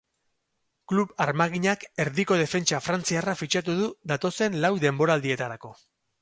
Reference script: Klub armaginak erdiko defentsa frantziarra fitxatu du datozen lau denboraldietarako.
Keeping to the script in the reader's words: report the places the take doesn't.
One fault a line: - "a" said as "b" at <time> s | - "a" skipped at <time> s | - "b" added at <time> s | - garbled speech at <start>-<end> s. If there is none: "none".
none